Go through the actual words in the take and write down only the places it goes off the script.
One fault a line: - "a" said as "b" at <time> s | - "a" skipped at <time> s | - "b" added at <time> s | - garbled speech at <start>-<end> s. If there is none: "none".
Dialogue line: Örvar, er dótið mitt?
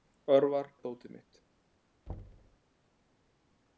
none